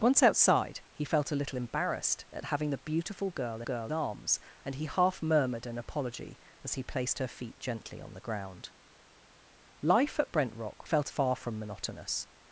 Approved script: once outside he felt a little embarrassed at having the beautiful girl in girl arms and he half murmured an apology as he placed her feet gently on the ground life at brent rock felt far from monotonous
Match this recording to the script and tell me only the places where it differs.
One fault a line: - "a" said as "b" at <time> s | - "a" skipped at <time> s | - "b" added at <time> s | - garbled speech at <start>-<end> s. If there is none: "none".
none